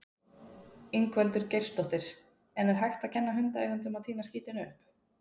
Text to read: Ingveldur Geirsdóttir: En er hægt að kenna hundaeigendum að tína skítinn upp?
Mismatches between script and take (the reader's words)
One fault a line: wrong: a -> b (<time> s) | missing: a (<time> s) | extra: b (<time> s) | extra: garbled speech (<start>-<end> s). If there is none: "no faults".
no faults